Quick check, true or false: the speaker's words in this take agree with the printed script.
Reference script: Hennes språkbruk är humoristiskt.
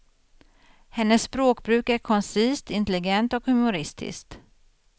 false